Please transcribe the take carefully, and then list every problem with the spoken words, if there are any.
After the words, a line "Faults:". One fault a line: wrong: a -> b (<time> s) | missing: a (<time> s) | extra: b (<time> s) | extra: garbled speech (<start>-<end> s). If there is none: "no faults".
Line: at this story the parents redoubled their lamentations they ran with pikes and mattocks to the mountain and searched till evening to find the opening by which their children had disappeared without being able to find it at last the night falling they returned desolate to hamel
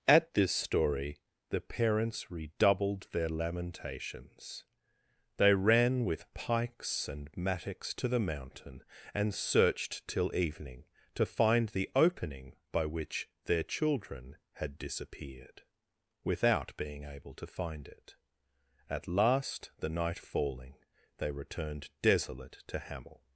at this story the parents redoubled their lamentations they ran with pikes and mattocks to the mountain and searched till evening to find the opening by which their children had disappeared without being able to find it at last the night falling they returned desolate to hamel
Faults:
no faults